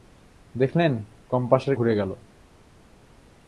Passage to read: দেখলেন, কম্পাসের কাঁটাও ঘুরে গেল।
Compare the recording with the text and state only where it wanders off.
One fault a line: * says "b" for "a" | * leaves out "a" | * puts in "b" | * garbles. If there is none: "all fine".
* leaves out "কাঁটাও"